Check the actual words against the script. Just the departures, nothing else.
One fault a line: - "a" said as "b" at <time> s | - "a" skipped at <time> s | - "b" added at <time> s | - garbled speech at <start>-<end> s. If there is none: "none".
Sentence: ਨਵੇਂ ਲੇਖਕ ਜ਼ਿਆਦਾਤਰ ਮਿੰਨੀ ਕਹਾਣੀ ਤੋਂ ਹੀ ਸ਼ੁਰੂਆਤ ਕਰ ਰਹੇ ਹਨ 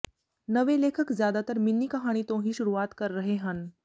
none